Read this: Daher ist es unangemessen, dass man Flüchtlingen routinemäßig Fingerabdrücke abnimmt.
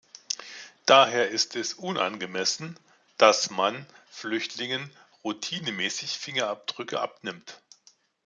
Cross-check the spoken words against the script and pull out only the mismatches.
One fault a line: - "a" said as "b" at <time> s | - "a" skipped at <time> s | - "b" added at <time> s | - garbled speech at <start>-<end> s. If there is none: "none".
none